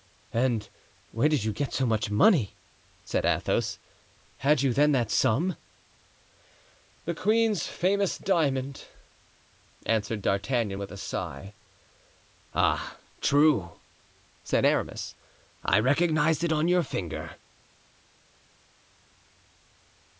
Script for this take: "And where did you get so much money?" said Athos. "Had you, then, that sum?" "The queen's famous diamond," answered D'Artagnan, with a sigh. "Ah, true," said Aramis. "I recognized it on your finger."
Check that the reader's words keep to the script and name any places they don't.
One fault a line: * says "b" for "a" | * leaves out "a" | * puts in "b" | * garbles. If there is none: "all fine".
all fine